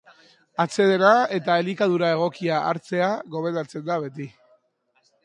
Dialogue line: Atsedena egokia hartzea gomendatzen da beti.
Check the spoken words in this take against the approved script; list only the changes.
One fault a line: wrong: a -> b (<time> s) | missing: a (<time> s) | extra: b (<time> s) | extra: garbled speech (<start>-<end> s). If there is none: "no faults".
extra: eta elikadura (1.4 s)